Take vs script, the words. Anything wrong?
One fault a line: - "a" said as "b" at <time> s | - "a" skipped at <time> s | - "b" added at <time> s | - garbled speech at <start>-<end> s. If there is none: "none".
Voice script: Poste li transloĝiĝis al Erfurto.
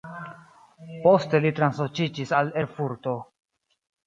none